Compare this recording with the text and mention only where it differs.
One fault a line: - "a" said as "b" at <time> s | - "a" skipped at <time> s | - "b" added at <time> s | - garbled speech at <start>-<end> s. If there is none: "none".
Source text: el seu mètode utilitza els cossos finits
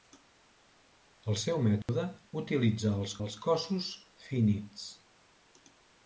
- "els" added at 3.3 s